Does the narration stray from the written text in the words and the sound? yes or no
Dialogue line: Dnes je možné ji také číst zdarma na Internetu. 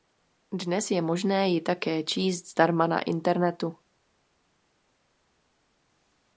no